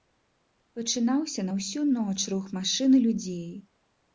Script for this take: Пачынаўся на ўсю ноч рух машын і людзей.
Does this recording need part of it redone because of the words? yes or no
no